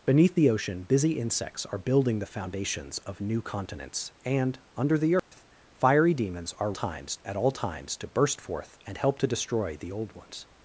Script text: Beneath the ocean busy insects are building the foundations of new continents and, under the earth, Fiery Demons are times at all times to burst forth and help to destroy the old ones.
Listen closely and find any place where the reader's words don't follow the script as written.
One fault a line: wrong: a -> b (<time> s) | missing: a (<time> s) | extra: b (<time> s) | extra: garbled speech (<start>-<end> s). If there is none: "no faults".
no faults